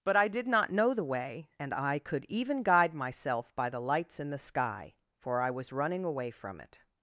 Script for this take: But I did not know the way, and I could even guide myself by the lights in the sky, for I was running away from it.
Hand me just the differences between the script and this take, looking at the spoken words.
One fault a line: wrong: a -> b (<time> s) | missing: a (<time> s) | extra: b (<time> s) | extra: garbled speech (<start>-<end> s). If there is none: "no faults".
no faults